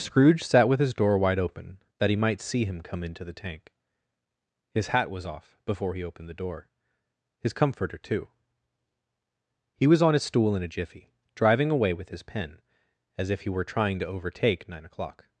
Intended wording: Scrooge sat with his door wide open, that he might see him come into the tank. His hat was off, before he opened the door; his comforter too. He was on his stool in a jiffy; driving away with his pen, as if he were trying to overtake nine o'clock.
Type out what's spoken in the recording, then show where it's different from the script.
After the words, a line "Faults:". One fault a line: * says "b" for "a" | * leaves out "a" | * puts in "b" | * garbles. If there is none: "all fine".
Scrooge sat with his door wide open, that he might see him come into the tank. His hat was off, before he opened the door; his comforter too. He was on his stool in a jiffy; driving away with his pen, as if he were trying to overtake nine o'clock.
Faults:
all fine